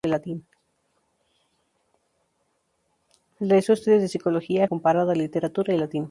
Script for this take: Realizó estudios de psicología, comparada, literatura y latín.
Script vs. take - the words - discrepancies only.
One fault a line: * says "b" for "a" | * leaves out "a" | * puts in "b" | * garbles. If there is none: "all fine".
all fine